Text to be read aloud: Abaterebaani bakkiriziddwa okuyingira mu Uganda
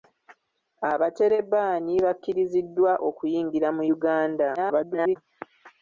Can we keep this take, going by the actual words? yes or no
no